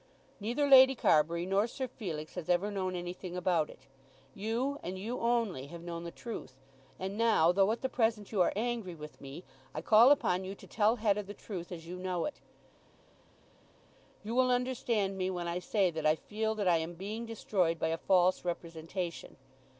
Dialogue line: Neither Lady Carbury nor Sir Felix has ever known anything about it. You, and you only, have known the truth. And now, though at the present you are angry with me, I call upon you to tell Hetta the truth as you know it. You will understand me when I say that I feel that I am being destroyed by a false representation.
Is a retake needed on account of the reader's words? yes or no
no